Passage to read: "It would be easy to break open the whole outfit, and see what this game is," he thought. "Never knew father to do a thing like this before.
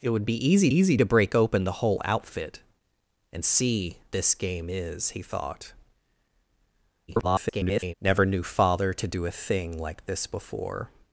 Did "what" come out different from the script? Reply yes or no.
yes